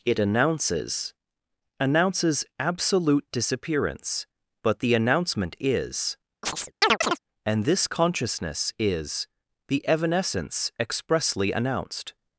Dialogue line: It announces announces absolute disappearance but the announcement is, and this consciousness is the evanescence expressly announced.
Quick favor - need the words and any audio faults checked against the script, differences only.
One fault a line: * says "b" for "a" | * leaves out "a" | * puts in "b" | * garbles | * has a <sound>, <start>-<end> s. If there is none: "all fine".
* has a chirp, 6.4-7.2 s